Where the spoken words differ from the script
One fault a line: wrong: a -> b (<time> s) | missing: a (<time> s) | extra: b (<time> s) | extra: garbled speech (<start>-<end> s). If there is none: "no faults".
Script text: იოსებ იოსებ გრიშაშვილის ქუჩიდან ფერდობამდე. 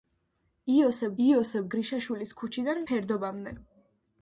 no faults